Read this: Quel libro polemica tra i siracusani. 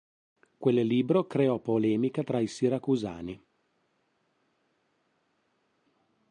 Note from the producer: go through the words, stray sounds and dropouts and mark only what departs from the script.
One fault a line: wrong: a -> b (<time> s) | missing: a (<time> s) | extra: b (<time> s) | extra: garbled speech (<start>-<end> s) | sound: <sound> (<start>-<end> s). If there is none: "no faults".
extra: creò (1.3 s)